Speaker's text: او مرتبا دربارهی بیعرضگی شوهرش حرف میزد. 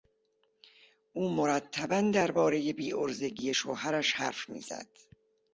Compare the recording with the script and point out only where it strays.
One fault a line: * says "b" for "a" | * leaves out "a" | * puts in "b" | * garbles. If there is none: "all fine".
all fine